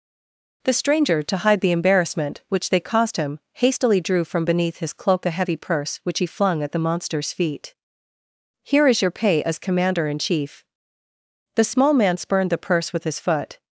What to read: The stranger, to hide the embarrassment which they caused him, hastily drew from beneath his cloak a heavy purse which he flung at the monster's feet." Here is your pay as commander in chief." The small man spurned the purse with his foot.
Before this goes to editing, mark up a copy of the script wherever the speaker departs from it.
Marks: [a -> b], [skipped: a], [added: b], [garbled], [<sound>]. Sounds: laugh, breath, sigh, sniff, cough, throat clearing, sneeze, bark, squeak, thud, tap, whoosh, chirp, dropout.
The stranger, to hide the embarrassment which they caused him, hastily drew from beneath his cloak a heavy purse which he flung at the monster's feet." Here is your pay as commander in chief." The small man spurned the purse with his foot.